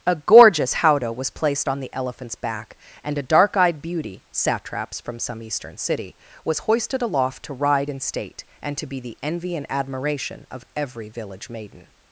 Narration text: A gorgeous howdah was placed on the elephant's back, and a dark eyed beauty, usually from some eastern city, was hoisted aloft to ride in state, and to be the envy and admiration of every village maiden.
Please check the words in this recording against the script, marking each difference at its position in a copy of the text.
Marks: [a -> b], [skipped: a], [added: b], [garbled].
A gorgeous howdah was placed on the elephant's back, and a dark eyed beauty, [usually -> satraps] from some eastern city, was hoisted aloft to ride in state, and to be the envy and admiration of every village maiden.